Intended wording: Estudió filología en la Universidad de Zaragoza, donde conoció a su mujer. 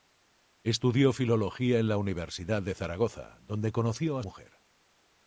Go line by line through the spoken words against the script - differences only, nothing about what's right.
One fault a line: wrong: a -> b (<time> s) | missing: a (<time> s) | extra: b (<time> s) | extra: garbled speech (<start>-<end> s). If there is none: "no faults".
missing: su (4.2 s)